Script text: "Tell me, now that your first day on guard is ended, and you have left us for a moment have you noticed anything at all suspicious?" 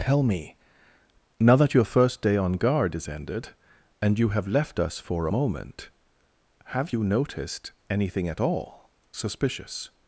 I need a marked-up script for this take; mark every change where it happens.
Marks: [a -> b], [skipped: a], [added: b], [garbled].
"Tell me, now that your first day on guard is ended, and you have left us for a moment have you noticed anything at all suspicious?"